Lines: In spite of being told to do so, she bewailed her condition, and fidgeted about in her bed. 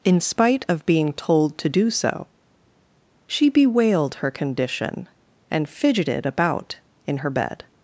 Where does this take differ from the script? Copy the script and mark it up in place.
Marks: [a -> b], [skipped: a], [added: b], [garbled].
In spite of being told to do so, she bewailed her condition, and fidgeted about in her bed.